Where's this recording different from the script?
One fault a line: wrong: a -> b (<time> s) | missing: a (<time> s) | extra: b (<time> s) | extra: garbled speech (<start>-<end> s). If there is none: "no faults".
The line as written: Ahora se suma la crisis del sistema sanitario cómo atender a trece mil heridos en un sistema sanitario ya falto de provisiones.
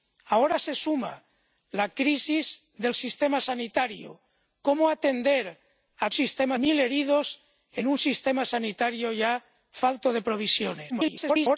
wrong: trece -> sistema (6.1 s)
extra: garbled speech (10.9-11.6 s)